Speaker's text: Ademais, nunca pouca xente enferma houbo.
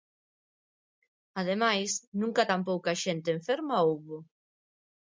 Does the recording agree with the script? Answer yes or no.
no